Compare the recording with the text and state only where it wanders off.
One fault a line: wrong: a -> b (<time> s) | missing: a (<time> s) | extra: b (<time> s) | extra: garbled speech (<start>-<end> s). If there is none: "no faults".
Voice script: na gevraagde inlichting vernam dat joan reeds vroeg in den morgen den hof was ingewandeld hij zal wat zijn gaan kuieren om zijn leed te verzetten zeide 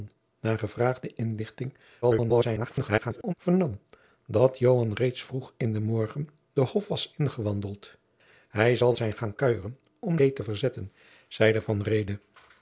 extra: garbled speech (2.0-3.3 s)
missing: wat (8.9 s)
missing: zijn (10.2 s)